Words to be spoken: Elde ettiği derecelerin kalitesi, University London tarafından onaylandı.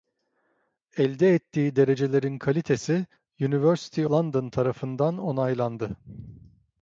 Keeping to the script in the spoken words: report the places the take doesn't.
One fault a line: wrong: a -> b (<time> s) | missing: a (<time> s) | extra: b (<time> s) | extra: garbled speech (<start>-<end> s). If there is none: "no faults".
no faults